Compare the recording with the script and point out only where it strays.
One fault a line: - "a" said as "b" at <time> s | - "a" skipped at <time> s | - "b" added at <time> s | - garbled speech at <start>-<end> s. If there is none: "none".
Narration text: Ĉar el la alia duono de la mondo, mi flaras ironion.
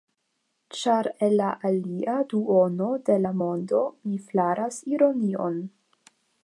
none